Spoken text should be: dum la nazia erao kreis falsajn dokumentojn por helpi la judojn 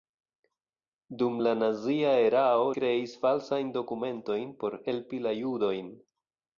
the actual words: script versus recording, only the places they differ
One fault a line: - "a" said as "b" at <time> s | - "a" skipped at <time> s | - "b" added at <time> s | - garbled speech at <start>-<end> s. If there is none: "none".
none